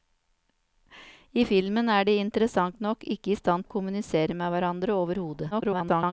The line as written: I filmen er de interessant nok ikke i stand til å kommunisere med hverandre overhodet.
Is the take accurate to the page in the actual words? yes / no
no